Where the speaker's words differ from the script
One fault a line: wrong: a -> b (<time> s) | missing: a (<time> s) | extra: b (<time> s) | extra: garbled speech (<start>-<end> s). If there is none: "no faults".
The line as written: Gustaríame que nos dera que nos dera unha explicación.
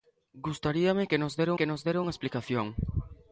no faults